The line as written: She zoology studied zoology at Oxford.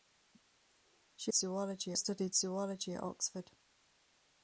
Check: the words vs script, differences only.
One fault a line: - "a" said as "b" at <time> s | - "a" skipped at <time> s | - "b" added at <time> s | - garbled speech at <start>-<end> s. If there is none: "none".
none